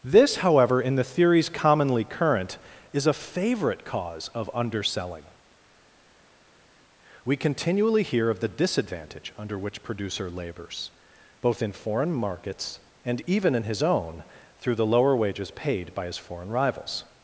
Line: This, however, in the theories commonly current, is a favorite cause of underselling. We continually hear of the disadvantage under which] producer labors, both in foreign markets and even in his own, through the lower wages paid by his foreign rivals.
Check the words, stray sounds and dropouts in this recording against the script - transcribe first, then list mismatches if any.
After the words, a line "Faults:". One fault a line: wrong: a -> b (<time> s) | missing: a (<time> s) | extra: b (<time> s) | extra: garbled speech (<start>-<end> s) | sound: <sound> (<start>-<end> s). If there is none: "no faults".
This, however, in the theories commonly current, is a favorite cause of underselling. We continually hear of the disadvantage under which] producer labors, both in foreign markets and even in his own, through the lower wages paid by his foreign rivals.
Faults:
no faults